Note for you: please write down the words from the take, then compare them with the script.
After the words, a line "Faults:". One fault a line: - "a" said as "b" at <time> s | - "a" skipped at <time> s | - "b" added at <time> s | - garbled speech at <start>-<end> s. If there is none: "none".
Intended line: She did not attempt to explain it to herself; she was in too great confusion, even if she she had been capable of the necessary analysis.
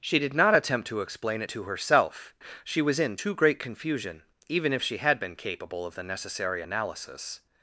She did not attempt to explain it to herself; she was in too great confusion, even if she had been capable of the necessary analysis.
Faults:
- "she" skipped at 5.0 s